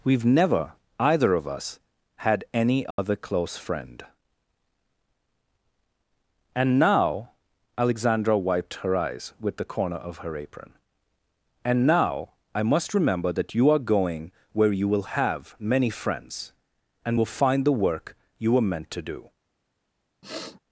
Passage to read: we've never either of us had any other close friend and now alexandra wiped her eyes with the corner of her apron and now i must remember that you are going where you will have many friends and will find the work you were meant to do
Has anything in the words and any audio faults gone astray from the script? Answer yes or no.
yes